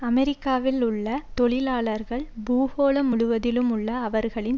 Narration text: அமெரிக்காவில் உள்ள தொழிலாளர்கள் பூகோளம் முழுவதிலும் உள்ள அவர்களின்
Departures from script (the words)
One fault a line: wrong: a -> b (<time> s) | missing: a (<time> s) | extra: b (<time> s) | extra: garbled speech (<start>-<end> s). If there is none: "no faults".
no faults